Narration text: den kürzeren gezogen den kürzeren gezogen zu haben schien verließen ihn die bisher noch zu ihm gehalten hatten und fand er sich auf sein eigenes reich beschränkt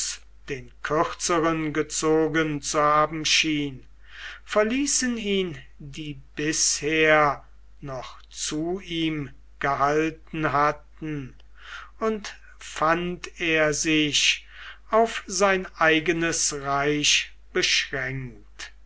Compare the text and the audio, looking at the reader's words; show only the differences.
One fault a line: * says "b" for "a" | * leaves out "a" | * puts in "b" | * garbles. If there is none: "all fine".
* leaves out "den kürzeren gezogen"